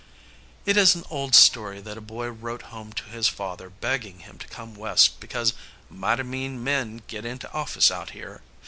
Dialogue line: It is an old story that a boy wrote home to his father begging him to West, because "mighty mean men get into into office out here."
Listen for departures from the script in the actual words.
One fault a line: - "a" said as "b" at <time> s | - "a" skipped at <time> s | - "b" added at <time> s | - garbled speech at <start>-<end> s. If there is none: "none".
- "come" added at 4.5 s
- "into" skipped at 7.5 s